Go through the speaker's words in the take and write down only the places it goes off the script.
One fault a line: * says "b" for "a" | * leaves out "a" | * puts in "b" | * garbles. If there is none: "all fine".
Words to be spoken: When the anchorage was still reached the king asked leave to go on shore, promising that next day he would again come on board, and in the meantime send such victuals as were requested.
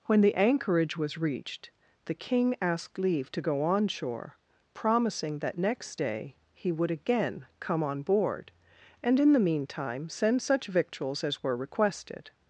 * leaves out "still"